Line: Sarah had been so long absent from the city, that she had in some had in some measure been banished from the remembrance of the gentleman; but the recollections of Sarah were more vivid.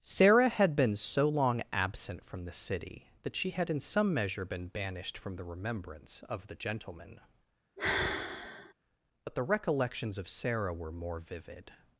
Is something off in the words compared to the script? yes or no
yes